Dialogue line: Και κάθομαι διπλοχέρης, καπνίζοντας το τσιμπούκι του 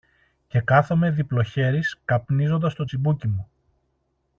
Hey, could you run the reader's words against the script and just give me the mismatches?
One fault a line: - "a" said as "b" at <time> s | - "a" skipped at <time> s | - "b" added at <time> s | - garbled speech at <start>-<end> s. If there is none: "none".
- "του" said as "μου" at 3.3 s